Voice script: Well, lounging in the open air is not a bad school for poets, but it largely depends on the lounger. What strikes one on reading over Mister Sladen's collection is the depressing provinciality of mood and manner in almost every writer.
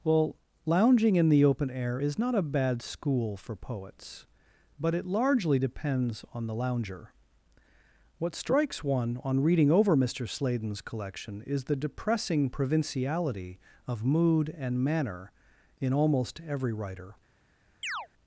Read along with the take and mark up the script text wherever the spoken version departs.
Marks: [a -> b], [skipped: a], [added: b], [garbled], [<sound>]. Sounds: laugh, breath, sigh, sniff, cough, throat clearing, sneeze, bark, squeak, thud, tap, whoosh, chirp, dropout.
Well, lounging in the open air is not a bad school for poets, but it largely depends on the lounger. What strikes one on reading over Mister Sladen's collection is the depressing provinciality of mood and manner in almost every writer. [chirp]